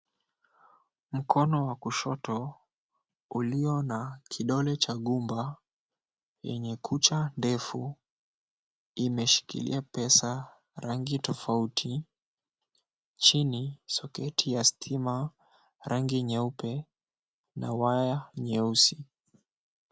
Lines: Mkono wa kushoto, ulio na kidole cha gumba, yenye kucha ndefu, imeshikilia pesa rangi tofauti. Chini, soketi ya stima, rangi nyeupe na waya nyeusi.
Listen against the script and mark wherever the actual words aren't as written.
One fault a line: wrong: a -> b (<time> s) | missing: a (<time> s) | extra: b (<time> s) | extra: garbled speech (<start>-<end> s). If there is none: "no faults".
no faults